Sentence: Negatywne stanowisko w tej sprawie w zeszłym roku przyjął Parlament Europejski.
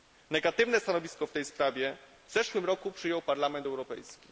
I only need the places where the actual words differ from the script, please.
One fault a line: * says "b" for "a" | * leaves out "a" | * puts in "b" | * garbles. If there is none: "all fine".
all fine